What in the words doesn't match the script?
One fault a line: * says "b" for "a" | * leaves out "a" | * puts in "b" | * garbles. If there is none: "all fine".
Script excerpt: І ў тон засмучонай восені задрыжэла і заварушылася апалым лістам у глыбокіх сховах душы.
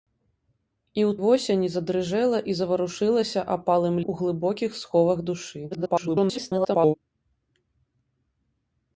* leaves out "тон засмучонай"
* leaves out "лістам"
* garbles